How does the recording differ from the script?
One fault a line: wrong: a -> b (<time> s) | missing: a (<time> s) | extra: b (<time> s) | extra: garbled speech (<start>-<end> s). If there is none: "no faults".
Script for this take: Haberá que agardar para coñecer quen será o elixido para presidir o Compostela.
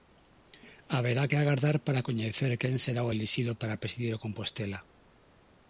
no faults